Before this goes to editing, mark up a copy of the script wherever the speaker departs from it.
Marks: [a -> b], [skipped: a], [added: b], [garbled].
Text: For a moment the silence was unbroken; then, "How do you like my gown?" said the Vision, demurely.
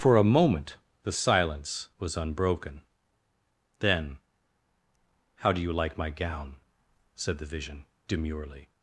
For a moment the silence was unbroken; then, "How do you like my gown?" said the Vision, demurely.